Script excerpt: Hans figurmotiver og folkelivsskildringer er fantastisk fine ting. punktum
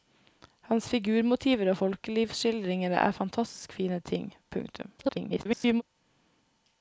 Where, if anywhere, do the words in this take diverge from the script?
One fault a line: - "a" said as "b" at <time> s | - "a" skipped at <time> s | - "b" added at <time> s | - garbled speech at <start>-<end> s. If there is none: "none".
- garbled speech at 5.0-5.8 s